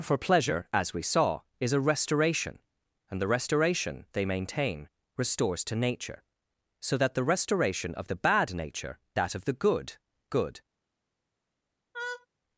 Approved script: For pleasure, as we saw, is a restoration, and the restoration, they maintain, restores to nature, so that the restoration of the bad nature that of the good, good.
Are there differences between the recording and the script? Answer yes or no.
no